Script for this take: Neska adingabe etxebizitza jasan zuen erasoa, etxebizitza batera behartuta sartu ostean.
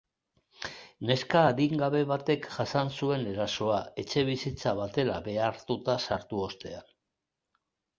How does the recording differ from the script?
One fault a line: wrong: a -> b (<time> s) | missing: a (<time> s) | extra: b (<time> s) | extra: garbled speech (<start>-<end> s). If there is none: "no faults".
wrong: etxebizitza -> batek (2.1 s)